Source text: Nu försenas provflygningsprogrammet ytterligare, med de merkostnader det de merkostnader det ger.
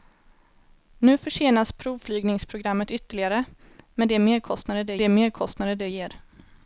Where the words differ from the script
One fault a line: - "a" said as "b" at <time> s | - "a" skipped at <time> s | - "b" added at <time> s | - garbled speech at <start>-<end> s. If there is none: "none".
none